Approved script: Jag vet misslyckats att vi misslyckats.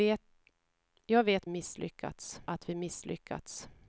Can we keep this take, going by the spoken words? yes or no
yes